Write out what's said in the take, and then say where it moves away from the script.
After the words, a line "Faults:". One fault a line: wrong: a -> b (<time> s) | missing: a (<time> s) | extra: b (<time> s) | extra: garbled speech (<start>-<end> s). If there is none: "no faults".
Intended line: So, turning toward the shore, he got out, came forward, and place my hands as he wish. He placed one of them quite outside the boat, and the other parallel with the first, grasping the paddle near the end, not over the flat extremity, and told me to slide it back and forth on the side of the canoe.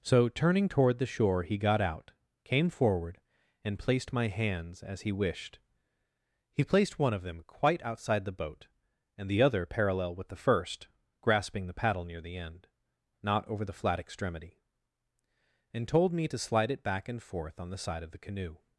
So, turning toward the shore, he got out, came forward, and placed my hands as he wished. He placed one of them quite outside the boat, and the other parallel with the first, grasping the paddle near the end, not over the flat extremity, and told me to slide it back and forth on the side of the canoe.
Faults:
wrong: place -> placed (3.8 s)
wrong: wish -> wished (5.1 s)